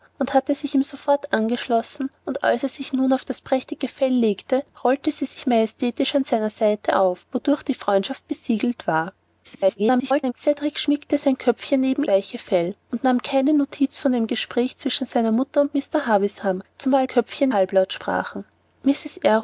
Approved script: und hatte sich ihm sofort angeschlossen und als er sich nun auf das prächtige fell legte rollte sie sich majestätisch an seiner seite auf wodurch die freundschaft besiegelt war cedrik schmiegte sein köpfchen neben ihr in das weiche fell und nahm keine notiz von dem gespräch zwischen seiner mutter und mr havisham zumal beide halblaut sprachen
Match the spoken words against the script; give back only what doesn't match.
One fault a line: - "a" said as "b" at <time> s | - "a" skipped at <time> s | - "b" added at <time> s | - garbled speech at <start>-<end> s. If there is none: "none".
- garbled speech at 9.4-10.3 s
- "ihr in das" skipped at 12.0 s
- "beide" said as "köpfchen" at 17.1 s